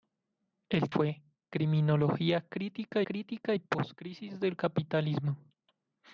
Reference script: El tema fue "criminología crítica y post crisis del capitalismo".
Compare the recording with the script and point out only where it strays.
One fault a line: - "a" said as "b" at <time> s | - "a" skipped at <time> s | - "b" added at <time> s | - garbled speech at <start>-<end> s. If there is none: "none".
- "tema" skipped at 0.9 s
- "crítica" added at 3.0 s